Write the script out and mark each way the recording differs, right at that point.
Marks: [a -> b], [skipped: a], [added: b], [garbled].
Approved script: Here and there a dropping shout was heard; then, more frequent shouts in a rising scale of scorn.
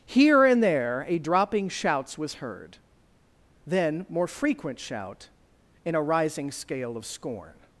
Here and there a dropping [shout -> shouts] was heard; then, more frequent [shouts -> shout] in a rising scale of scorn.